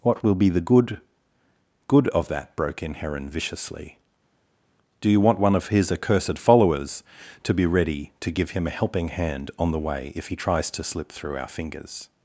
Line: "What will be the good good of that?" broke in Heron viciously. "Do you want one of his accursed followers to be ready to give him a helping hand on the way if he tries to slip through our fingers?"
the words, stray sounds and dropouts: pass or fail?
pass